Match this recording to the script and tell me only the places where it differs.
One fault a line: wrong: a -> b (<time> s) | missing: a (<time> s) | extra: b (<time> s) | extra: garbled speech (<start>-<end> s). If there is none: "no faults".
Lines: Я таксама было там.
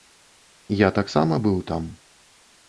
wrong: было -> быў (1.5 s)